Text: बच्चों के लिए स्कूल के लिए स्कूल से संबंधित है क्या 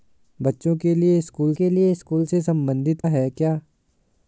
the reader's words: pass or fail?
pass